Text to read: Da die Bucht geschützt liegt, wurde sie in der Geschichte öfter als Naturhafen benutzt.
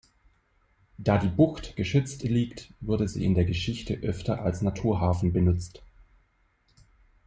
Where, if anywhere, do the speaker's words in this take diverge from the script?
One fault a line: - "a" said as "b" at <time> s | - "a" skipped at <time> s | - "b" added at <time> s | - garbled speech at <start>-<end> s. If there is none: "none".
none